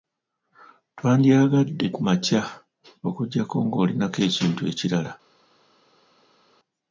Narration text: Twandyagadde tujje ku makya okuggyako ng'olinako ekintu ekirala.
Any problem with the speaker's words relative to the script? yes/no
yes